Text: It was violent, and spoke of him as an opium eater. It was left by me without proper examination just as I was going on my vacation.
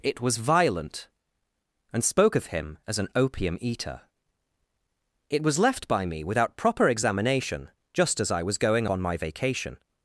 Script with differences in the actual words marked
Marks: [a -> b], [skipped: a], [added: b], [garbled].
It was violent, and spoke of him as an opium eater. It was left by me without proper examination just as I was going on my vacation.